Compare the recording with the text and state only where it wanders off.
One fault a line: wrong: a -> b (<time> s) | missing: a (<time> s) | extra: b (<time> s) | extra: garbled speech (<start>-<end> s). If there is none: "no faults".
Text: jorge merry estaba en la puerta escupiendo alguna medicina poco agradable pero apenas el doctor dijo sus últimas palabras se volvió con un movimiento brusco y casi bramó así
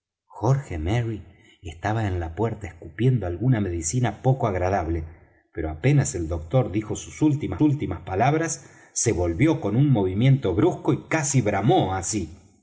extra: últimas (7.6 s)